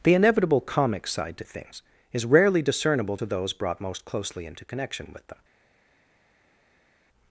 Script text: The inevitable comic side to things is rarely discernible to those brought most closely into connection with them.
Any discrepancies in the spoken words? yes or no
no